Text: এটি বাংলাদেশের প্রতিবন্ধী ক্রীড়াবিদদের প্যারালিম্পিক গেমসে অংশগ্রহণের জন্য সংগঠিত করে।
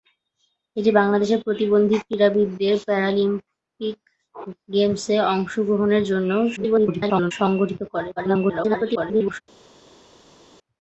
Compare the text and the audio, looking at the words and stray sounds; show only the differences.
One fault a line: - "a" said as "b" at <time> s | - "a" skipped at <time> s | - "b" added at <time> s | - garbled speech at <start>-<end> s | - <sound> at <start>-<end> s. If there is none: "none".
- garbled speech at 6.6-7.3 s
- garbled speech at 8.2-9.4 s